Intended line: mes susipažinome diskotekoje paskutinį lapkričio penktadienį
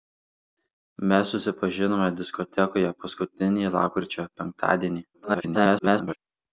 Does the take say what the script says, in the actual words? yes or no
no